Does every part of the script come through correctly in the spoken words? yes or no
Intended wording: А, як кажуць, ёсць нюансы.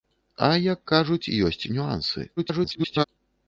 no